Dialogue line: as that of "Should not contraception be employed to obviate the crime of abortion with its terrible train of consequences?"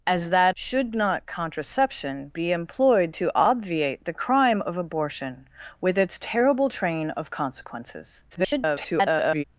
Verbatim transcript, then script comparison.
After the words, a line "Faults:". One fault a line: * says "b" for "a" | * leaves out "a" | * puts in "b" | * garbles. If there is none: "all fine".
as that "Should not contraception be employed to obviate the crime of abortion with its terrible train of consequences?" [garbled]
Faults:
* leaves out "of"
* garbles